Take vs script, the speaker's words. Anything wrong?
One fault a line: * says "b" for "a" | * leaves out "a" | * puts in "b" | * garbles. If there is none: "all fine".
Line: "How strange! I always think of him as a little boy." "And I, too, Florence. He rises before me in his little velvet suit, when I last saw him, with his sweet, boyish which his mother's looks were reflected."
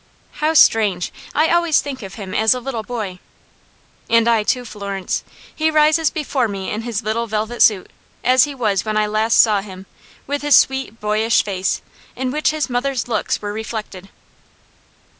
* puts in "as he was"
* puts in "face in"